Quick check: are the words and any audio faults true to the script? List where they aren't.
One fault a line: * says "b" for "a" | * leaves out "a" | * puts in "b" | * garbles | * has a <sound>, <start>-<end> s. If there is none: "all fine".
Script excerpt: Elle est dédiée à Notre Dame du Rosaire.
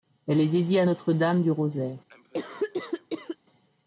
* has a cough, 2.1-3.4 s